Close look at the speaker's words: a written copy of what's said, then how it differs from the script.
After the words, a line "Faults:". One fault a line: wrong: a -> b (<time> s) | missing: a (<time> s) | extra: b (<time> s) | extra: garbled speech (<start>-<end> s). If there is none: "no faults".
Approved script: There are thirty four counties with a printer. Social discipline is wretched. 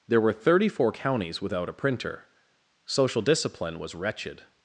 There were thirty four counties without a printer. Social discipline was wretched.
Faults:
wrong: are -> were (0.2 s)
wrong: with -> without (1.4 s)
wrong: is -> was (3.8 s)